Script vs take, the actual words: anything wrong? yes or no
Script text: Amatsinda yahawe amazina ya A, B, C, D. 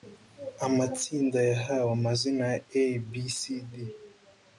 no